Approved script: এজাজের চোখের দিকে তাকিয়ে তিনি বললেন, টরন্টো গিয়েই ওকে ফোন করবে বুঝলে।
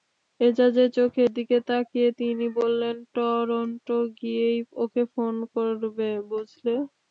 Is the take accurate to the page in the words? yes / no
yes